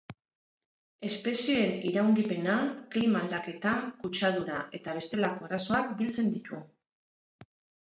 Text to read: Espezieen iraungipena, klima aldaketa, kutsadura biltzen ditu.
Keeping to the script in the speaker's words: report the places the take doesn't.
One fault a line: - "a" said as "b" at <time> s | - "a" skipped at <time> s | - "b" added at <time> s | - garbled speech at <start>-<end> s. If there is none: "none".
- "eta bestelako arazoak" added at 4.8 s